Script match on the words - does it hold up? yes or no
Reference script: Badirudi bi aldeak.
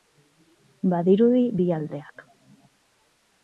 yes